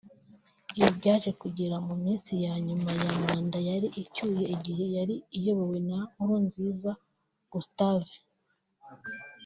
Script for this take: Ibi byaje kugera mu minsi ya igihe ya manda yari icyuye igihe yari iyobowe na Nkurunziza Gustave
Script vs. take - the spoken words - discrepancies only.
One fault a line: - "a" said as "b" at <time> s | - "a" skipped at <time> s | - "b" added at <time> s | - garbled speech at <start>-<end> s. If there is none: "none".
- "igihe" said as "nyuma" at 2.7 s